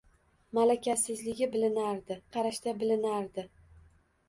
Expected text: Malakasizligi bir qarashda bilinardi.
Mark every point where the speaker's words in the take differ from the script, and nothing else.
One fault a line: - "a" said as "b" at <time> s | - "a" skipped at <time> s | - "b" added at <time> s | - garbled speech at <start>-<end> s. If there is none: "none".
- "bir" said as "bilinardi" at 1.6 s